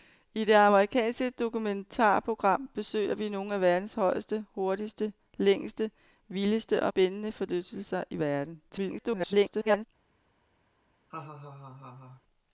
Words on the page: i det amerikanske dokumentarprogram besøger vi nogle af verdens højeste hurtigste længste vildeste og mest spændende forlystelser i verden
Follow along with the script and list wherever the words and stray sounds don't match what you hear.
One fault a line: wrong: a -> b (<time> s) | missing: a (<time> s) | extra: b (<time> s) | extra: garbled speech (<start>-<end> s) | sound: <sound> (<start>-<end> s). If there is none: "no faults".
missing: mest (6.9 s)
extra: garbled speech (8.7-9.9 s)
sound: laugh (11.1-12.2 s)